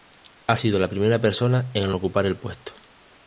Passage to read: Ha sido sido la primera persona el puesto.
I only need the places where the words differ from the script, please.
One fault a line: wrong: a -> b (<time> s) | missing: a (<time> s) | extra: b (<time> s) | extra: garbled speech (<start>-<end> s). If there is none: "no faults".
missing: sido (0.8 s)
extra: en ocupar (1.7 s)